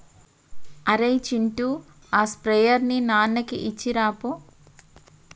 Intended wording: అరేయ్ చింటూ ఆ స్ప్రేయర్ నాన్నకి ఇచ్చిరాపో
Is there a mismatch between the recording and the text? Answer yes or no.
yes